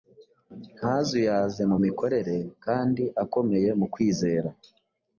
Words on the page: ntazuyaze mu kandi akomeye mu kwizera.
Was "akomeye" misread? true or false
false